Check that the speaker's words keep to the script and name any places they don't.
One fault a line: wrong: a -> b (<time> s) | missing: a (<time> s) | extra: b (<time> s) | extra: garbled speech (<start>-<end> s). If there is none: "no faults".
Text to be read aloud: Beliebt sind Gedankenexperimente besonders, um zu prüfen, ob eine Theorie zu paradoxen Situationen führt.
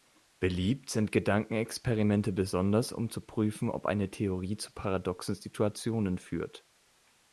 no faults